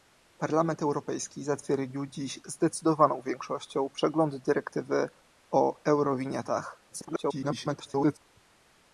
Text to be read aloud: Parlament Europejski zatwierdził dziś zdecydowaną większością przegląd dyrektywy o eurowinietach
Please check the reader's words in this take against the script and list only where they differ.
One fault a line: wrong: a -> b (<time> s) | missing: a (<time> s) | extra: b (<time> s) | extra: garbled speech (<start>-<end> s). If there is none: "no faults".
extra: garbled speech (6.9-8.2 s)